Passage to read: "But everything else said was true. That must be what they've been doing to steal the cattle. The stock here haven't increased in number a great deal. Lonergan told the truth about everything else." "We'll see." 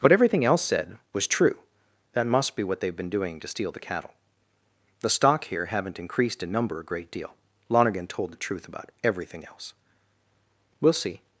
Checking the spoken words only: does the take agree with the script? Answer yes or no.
yes